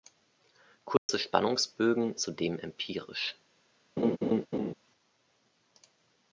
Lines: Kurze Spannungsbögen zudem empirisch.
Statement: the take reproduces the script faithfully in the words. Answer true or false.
true